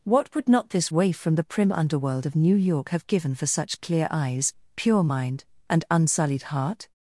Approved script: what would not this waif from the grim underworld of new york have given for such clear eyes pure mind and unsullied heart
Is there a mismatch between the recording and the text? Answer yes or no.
yes